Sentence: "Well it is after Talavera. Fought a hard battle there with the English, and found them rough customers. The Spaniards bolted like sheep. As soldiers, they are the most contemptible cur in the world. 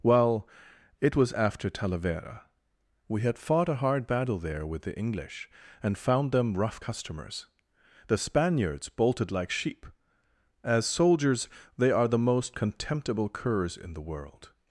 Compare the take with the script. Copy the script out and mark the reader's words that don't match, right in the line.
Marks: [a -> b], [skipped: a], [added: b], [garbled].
"Well it [is -> was] after Talavera. [added: We had] Fought a hard battle there with the English, and found them rough customers. The Spaniards bolted like sheep. As soldiers, they are the most contemptible [cur -> curs] in the world.